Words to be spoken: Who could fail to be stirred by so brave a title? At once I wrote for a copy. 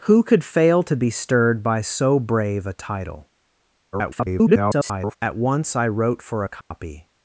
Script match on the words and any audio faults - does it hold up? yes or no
no